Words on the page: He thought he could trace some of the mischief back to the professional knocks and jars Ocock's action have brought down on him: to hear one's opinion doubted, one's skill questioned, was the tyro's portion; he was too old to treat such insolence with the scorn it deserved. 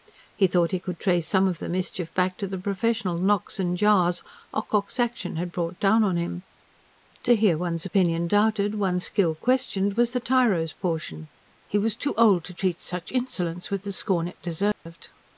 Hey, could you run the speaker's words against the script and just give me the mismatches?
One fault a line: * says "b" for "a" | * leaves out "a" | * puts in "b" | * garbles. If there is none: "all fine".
* says "had" for "have"